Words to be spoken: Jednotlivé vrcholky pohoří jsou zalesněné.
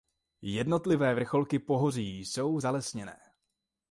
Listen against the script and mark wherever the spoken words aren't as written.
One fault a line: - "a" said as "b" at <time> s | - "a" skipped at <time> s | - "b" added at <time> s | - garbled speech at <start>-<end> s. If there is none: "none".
none